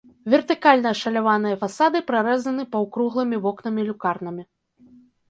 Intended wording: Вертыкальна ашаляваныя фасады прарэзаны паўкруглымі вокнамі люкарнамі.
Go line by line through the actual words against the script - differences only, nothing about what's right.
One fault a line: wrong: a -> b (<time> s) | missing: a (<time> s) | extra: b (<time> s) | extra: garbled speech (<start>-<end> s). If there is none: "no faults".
no faults